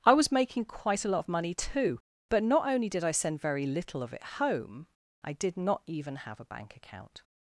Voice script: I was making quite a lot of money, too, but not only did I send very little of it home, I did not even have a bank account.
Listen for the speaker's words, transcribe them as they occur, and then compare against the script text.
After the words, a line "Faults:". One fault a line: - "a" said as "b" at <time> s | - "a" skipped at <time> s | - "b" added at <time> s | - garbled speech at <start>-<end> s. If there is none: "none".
I was making quite a lot of money, too, but not only did I send very little of it home, I did not even have a bank account.
Faults:
none